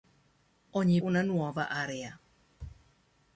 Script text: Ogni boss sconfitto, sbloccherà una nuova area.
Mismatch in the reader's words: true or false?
true